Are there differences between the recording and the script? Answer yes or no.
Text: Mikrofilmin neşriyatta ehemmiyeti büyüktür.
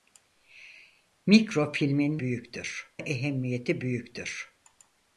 yes